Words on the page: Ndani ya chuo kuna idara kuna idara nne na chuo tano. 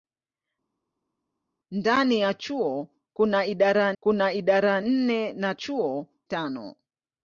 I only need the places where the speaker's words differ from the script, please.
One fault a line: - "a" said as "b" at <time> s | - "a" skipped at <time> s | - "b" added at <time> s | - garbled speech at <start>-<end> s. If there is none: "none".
none